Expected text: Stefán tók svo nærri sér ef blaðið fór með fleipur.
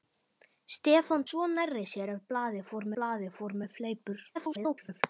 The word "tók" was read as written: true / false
false